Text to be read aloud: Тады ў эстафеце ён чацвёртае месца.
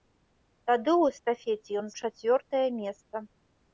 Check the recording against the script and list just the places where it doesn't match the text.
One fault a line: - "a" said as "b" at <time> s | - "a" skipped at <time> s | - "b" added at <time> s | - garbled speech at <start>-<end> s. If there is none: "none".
none